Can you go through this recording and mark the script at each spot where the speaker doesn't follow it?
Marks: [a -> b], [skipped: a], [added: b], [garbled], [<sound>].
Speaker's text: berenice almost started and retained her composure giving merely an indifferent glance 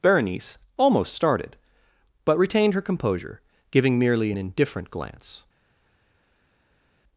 berenice almost started [and -> but] retained her composure giving merely an indifferent glance